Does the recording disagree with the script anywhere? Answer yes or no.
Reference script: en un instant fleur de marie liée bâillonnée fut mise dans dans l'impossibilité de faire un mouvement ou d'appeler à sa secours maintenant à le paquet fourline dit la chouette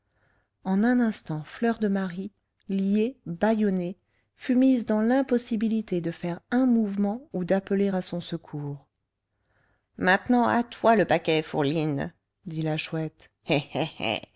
yes